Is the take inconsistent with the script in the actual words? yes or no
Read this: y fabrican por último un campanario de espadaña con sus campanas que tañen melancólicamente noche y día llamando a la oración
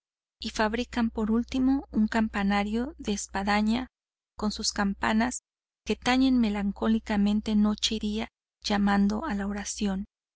no